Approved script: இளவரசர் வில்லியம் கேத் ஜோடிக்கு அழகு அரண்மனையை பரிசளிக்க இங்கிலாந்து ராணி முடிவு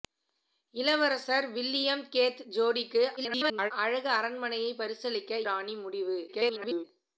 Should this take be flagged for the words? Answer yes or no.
yes